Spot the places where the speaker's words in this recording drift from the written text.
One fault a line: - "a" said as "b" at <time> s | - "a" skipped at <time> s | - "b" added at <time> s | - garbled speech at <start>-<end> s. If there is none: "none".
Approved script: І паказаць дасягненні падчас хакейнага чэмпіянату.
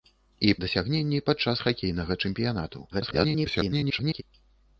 - "паказаць" skipped at 0.5 s
- garbled speech at 2.9-4.2 s